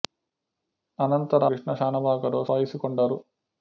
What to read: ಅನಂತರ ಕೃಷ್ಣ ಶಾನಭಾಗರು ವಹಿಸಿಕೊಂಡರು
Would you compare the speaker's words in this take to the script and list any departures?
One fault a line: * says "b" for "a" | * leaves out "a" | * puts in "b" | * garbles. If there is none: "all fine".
all fine